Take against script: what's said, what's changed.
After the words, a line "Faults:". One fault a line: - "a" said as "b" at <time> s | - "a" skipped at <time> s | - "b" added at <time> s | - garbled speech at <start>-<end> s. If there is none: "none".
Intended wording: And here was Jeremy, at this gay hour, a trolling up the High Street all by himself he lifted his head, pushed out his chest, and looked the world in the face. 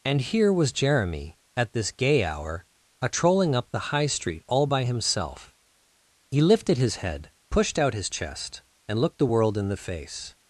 And here was Jeremy, at this gay hour, a trolling up the High Street all by himself he lifted his head, pushed out his chest, and looked the world in the face.
Faults:
none